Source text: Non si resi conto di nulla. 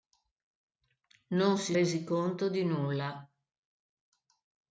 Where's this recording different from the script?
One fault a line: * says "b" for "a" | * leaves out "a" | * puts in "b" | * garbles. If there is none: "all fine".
all fine